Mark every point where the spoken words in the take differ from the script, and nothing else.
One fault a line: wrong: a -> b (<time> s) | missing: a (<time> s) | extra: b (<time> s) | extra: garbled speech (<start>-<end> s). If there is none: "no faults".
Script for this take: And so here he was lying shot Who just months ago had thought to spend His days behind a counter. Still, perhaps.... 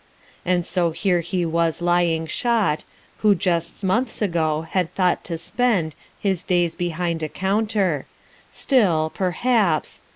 no faults